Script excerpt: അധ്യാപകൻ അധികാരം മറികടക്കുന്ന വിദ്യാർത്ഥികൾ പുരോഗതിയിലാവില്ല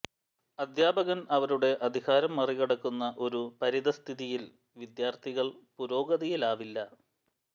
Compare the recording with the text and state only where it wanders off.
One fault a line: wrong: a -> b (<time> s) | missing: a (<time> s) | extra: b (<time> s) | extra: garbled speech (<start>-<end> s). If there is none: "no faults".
extra: അവരുടെ (1.3 s)
extra: ഒരു പരിതഃസ്ഥിതിയിൽ (3.2 s)